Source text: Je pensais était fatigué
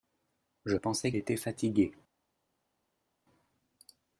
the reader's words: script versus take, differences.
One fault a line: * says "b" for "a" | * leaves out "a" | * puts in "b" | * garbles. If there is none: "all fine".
all fine